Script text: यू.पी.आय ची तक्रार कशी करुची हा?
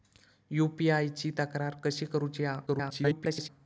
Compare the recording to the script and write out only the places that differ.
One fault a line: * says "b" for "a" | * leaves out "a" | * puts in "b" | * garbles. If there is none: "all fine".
* garbles